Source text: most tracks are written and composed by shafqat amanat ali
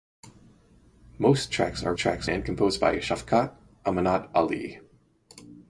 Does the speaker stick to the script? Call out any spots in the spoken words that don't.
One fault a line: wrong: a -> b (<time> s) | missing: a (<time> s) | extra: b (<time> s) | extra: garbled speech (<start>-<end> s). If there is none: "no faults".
wrong: written -> tracks (2.0 s)